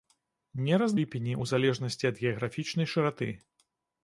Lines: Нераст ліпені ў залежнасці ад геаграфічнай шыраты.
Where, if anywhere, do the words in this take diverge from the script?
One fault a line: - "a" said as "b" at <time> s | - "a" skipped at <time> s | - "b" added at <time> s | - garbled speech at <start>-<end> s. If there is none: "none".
none